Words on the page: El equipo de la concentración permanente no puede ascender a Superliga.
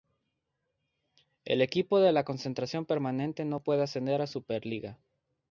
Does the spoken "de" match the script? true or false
true